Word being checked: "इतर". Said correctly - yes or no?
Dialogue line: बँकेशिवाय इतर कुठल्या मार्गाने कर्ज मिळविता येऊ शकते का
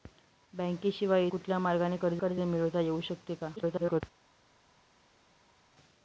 no